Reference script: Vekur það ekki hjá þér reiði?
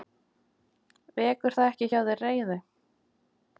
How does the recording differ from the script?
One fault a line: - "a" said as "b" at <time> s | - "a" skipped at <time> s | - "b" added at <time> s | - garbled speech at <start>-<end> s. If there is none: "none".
none